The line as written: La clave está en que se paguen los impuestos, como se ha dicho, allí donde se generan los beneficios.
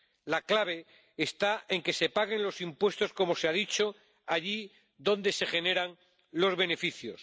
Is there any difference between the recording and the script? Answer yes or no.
no